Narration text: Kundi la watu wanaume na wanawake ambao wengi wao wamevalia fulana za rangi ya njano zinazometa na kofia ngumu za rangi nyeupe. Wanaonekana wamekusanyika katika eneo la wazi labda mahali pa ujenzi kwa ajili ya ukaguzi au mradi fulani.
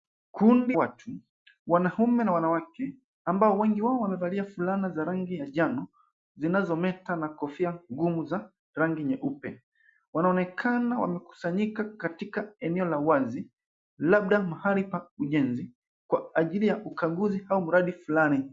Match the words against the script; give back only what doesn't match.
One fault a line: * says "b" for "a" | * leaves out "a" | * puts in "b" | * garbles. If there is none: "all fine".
* leaves out "la"